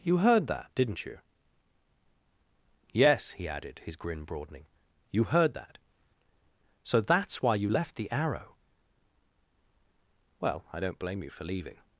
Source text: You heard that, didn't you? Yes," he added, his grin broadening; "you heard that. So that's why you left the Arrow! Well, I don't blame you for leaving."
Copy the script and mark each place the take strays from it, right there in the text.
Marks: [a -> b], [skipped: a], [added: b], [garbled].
You heard that, didn't you? Yes," he added, his grin broadening; "you heard that. So that's why you left the Arrow! Well, I don't blame you for leaving."